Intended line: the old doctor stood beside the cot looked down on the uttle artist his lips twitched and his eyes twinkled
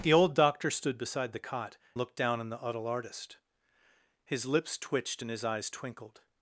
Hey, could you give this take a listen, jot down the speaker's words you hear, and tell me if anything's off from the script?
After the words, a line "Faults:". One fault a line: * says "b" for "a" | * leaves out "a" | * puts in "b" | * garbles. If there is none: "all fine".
the old doctor stood beside the cot looked down on the uttle artist his lips twitched and his eyes twinkled
Faults:
all fine